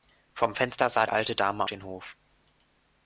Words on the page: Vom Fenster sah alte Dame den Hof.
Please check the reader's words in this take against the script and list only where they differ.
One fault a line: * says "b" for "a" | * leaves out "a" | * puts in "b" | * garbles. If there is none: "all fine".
all fine